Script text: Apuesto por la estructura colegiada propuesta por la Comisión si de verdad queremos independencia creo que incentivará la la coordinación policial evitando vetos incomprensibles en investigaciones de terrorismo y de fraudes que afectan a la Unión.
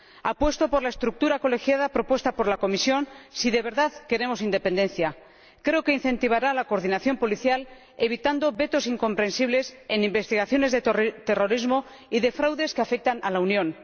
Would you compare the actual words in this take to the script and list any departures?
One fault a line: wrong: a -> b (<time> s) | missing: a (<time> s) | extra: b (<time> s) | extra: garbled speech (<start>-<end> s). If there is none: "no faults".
missing: la (6.7 s)